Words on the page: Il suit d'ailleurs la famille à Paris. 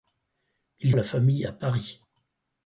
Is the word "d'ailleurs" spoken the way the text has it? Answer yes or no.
no